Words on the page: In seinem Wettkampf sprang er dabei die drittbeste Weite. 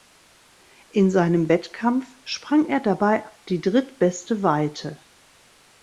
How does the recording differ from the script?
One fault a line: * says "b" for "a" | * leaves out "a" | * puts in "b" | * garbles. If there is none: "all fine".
all fine